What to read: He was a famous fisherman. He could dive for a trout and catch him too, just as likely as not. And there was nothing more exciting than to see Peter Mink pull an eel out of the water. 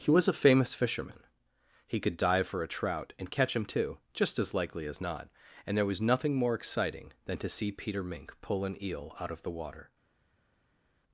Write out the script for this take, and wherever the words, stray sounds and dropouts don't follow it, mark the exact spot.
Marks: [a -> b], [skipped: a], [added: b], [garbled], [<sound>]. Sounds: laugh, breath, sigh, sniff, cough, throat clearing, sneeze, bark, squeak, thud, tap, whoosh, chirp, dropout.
He was a famous fisherman. He could dive for a trout and catch him too, just as likely as not. And there was nothing more exciting than to see Peter Mink pull an eel out of the water.